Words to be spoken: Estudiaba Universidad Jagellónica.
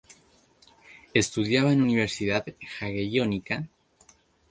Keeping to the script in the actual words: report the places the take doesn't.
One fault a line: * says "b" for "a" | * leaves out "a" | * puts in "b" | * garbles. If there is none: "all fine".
* puts in "en"